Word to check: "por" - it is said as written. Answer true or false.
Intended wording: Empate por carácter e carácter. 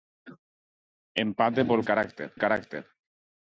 true